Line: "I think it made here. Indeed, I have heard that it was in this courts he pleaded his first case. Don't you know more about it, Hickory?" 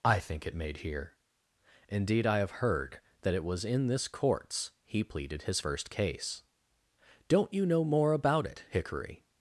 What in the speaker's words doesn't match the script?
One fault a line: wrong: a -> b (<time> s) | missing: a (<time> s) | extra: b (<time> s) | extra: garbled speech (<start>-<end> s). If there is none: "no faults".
no faults